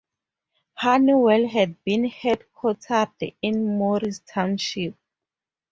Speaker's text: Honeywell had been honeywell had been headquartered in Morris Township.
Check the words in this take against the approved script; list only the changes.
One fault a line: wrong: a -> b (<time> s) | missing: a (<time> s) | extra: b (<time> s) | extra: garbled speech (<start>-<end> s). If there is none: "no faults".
missing: honeywell had been (2.1 s)